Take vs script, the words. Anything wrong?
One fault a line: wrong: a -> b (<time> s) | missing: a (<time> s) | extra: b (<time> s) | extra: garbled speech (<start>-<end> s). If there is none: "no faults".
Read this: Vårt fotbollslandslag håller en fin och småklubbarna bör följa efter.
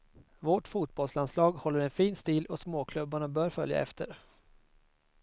extra: stil (2.1 s)